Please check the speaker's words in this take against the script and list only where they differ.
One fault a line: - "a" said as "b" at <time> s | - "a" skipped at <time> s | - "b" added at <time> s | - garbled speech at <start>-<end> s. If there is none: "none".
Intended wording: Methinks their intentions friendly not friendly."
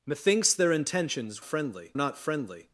none